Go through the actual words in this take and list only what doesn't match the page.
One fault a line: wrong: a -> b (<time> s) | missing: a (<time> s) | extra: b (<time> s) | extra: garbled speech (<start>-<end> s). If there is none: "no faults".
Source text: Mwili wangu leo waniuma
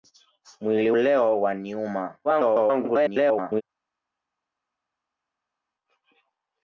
missing: wangu (0.9 s)
extra: garbled speech (2.2-3.6 s)